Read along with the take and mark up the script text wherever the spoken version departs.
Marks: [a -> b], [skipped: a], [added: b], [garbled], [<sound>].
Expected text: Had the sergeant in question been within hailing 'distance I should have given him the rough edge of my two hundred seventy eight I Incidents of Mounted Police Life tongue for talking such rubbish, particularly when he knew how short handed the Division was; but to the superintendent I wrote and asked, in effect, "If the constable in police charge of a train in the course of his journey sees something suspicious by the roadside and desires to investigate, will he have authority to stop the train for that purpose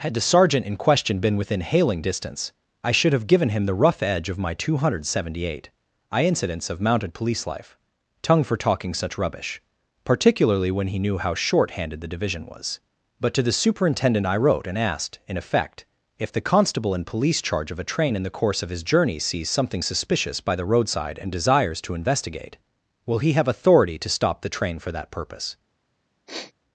Had the sergeant in question been within hailing 'distance I should have given him the rough edge of my two hundred seventy eight I Incidents of Mounted Police Life tongue for talking such rubbish, particularly when he knew how short handed the Division was; but to the superintendent I wrote and asked, in effect, "If the constable in police charge of a train in the course of his journey sees something suspicious by the roadside and desires to investigate, will he have authority to stop the train for that purpose [sniff]